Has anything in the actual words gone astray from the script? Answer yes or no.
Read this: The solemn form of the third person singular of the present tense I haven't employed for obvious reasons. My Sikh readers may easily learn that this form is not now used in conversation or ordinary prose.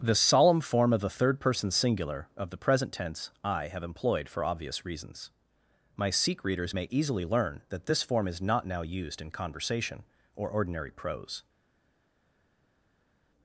yes